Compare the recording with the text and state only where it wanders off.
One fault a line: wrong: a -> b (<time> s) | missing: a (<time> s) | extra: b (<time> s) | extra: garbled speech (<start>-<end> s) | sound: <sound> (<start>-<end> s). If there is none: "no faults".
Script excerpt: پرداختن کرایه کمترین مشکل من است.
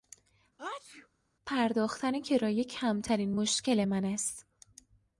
sound: sneeze (0.6-1.1 s)